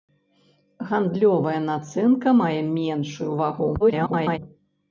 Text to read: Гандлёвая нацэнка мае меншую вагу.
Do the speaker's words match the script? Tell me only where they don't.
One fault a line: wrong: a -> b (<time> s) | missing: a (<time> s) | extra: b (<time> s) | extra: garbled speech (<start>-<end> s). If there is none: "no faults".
extra: garbled speech (3.8-4.4 s)